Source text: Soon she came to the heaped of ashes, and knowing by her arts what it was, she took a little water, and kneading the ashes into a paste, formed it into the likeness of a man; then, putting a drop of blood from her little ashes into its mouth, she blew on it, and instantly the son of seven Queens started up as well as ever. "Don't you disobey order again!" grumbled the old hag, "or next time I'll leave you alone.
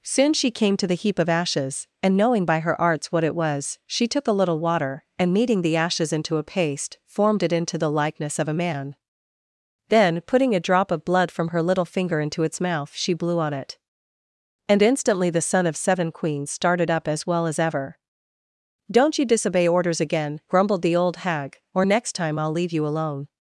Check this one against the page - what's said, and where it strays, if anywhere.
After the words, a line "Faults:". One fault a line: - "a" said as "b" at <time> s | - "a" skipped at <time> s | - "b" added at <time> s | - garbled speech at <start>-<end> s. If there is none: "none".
Soon she came to the heap of ashes, and knowing by her arts what it was, she took a little water, and kneading the ashes into a paste, formed it into the likeness of a man; then, putting a drop of blood from her little finger into its mouth, she blew on it, and instantly the son of seven Queens started up as well as ever. "Don't you disobey orders again!" grumbled the old hag, "or next time I'll leave you alone.
Faults:
- "heaped" said as "heap" at 0.9 s
- "ashes" said as "finger" at 11.8 s
- "order" said as "orders" at 19.7 s